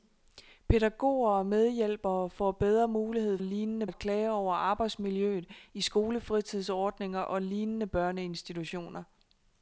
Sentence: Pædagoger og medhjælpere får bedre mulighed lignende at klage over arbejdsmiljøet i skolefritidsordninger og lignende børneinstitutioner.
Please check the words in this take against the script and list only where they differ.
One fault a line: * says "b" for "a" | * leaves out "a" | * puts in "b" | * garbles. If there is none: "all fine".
all fine